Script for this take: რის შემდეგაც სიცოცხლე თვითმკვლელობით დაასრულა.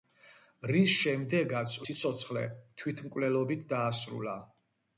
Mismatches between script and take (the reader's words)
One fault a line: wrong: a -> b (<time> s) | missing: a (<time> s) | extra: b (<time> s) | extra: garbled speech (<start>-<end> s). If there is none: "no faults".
no faults